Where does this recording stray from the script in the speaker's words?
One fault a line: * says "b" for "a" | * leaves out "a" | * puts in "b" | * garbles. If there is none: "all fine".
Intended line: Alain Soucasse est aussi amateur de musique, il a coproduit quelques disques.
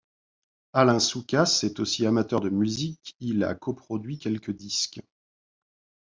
all fine